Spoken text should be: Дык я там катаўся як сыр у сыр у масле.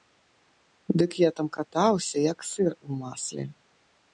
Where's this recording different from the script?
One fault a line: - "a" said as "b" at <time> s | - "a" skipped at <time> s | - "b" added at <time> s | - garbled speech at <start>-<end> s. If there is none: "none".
- "сыр у" skipped at 3.0 s